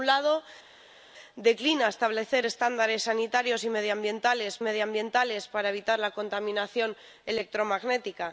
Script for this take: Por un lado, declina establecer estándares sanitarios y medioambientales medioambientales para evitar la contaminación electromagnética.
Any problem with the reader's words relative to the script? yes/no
no